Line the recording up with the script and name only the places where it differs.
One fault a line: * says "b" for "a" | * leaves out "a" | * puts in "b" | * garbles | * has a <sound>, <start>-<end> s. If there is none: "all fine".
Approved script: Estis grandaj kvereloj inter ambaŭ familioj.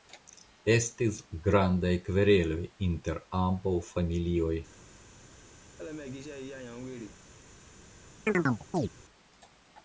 * has a laugh, 5.8-7.2 s
* has a chirp, 8.3-8.9 s